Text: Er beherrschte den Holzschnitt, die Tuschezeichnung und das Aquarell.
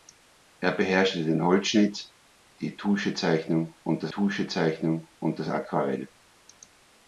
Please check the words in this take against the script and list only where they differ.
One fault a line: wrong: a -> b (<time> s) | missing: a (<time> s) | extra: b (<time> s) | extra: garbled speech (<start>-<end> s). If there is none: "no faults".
extra: Tuschezeichnung und das (4.1 s)